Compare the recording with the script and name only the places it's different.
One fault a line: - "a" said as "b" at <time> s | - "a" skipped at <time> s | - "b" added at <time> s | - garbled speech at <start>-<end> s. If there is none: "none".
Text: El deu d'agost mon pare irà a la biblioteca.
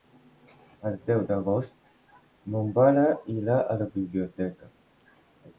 none